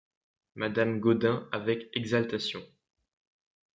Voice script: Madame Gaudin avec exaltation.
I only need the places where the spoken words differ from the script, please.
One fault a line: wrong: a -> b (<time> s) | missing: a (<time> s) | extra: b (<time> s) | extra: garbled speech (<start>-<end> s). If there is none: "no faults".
no faults